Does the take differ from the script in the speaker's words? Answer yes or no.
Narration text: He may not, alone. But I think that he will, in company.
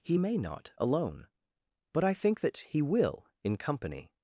no